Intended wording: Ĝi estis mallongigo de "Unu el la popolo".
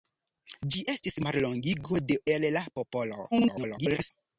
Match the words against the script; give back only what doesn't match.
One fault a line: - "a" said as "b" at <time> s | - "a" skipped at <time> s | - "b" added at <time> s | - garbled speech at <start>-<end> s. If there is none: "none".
- "Unu" skipped at 2.2 s
- garbled speech at 3.3-4.1 s